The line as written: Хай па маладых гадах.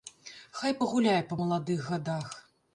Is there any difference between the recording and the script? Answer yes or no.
yes